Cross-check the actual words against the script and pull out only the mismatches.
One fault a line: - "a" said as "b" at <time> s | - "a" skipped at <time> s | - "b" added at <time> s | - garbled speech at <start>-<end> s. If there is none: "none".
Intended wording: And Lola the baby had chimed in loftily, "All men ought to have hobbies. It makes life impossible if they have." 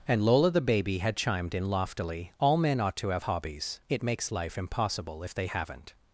- "have" said as "haven't" at 5.4 s